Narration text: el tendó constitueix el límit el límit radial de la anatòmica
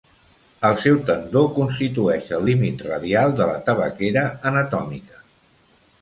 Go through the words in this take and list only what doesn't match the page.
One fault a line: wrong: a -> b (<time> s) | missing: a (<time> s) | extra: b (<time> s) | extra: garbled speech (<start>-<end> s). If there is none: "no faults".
extra: seu (0.8 s)
missing: el límit (2.8 s)
extra: tabaquera (3.7 s)